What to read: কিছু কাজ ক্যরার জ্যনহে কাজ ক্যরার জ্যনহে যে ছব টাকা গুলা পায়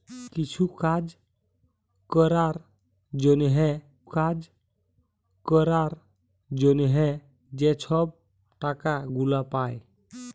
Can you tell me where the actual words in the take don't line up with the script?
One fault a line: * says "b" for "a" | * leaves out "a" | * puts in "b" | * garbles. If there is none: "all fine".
all fine